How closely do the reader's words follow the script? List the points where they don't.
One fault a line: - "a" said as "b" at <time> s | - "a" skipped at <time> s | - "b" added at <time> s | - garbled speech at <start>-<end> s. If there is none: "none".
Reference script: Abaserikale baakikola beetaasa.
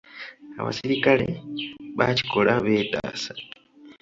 none